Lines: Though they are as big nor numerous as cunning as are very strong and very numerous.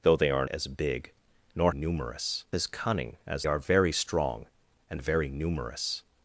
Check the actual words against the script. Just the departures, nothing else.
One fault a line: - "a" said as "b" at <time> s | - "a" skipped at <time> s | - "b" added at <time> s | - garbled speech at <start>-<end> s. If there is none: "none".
none